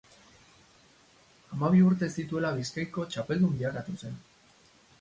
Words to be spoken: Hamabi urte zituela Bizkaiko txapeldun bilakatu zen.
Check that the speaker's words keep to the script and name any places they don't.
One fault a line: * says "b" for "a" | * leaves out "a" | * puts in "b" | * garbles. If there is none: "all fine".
all fine